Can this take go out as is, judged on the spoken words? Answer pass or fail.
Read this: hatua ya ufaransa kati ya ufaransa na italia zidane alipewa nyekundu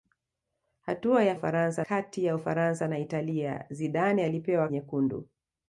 pass